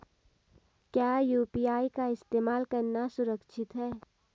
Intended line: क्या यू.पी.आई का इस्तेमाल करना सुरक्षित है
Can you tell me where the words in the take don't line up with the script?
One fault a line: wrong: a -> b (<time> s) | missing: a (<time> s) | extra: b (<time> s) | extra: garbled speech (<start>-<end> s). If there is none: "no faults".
no faults